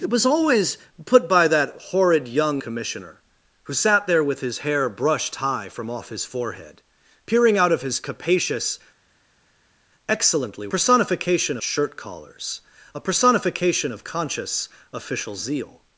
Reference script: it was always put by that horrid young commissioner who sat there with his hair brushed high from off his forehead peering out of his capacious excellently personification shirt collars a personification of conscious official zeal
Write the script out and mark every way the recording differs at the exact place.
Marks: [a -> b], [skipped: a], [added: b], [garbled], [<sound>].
it was always put by that horrid young commissioner who sat there with his hair brushed high from off his forehead peering out of his capacious excellently personification shirt collars a personification of conscious official zeal